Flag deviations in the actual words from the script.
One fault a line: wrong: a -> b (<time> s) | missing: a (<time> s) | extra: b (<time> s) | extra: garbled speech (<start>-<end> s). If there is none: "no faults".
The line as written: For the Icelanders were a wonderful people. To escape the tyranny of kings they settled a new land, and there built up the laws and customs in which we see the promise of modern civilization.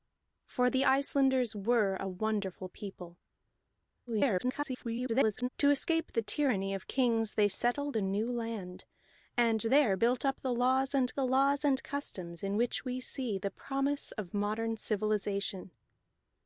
extra: garbled speech (4.1-5.5 s)
extra: the laws and (11.2 s)